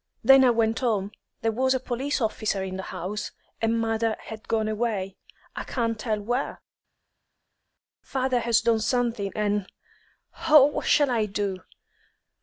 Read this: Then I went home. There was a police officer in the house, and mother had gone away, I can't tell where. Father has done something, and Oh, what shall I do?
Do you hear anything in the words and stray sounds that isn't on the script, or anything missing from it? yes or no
no